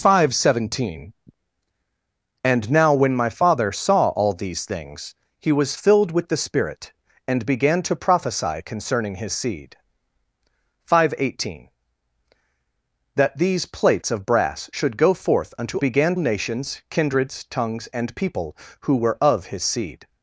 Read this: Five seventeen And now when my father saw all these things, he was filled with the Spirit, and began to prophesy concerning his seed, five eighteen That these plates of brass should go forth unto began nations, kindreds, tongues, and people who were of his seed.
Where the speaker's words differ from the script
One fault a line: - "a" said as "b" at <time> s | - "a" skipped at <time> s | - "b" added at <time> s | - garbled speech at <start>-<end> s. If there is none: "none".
none